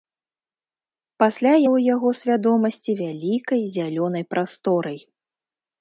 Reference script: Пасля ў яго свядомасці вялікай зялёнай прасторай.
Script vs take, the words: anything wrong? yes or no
no